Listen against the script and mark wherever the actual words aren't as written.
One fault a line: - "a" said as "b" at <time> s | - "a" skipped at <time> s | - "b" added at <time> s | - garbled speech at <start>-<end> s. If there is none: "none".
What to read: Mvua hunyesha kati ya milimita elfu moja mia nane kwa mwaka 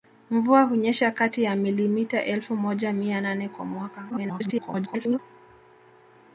- garbled speech at 4.1-5.2 s